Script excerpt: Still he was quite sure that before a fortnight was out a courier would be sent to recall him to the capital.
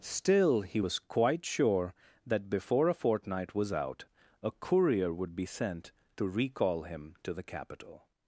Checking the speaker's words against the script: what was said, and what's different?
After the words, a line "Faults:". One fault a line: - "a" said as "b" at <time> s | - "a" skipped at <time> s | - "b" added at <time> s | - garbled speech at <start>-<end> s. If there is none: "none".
Still he was quite sure that before a fortnight was out a courier would be sent to recall him to the capital.
Faults:
none